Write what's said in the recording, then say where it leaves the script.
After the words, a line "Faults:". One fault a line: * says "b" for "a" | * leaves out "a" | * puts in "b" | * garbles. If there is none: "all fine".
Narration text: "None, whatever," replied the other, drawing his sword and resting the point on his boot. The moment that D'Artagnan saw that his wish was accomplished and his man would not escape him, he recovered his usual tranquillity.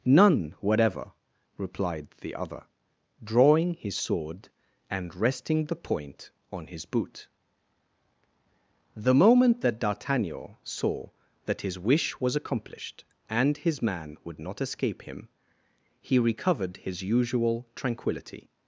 "None, whatever," replied the other, drawing his sword and resting the point on his boot. The moment that D'Artagnan saw that his wish was accomplished and his man would not escape him, he recovered his usual tranquillity.
Faults:
all fine